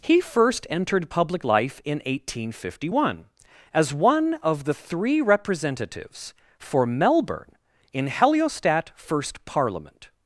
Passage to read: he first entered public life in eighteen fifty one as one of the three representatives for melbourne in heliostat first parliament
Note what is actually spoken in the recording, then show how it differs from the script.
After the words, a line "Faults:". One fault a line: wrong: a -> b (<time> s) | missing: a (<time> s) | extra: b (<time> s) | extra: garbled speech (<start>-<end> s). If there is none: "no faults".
he first entered public life in eighteen fifty one as one of the three representatives for melbourne in heliostat first parliament
Faults:
no faults